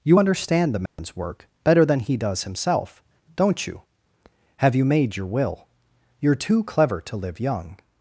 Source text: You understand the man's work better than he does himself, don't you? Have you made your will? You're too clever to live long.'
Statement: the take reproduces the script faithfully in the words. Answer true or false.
false